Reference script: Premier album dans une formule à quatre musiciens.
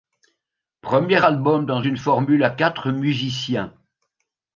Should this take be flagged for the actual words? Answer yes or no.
no